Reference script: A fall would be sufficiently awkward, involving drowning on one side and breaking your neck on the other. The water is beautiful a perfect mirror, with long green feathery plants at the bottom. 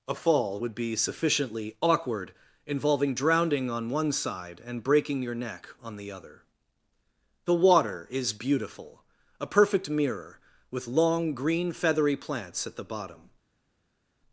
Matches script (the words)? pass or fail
pass